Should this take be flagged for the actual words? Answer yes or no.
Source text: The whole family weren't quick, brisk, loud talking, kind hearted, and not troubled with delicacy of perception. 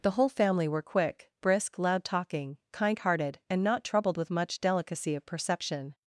yes